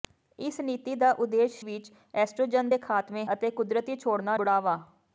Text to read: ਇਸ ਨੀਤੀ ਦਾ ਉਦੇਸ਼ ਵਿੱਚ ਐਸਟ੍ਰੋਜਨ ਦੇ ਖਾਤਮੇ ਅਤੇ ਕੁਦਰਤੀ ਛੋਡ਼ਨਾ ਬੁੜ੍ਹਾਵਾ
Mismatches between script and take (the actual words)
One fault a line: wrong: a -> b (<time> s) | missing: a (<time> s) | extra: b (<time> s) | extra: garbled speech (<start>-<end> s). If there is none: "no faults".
no faults